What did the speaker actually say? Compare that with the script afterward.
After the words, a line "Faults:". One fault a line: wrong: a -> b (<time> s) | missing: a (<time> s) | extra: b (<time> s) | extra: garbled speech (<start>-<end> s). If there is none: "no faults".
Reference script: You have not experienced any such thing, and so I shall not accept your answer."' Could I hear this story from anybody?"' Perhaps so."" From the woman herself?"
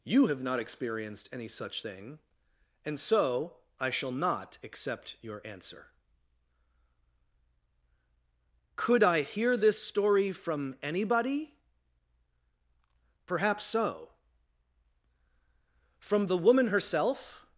You have not experienced any such thing, and so I shall not accept your answer."' Could I hear this story from anybody?"' Perhaps so."" From the woman herself?"
Faults:
no faults